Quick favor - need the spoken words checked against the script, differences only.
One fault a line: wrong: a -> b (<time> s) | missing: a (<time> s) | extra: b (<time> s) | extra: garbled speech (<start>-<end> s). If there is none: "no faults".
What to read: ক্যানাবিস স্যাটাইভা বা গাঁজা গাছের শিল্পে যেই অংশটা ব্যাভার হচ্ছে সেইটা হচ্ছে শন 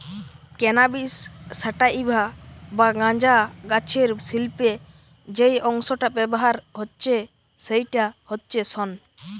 no faults